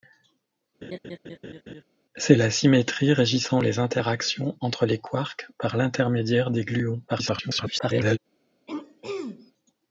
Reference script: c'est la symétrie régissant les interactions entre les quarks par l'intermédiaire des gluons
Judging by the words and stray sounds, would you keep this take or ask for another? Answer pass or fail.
fail